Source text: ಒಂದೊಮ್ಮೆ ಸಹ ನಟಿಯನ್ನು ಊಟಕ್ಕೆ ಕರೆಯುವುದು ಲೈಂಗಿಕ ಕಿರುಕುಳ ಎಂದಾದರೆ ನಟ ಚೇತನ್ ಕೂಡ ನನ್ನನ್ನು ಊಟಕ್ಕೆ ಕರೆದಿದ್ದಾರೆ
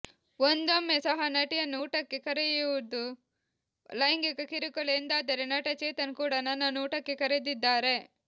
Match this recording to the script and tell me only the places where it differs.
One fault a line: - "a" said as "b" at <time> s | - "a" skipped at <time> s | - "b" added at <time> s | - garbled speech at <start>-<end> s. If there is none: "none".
none